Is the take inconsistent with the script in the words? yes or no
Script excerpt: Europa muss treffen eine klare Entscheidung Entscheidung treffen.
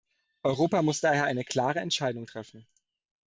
yes